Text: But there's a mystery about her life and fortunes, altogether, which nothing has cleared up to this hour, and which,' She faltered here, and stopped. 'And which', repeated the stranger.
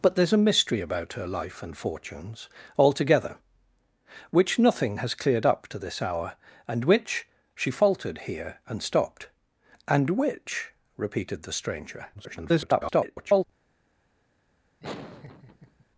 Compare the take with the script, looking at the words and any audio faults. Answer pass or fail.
fail